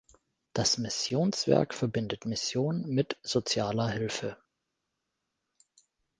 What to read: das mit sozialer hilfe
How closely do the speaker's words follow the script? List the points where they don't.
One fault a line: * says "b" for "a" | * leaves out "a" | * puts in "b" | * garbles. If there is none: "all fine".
* puts in "missionswerk verbindet mission"